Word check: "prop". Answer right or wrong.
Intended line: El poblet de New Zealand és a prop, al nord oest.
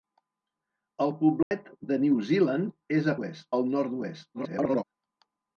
wrong